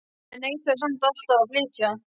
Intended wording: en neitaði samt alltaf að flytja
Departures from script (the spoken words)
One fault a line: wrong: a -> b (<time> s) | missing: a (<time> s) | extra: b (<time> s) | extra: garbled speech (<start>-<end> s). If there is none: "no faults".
no faults